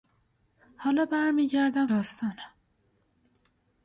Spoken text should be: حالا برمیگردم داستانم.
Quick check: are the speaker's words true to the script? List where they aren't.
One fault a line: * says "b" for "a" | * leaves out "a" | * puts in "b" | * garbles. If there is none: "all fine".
all fine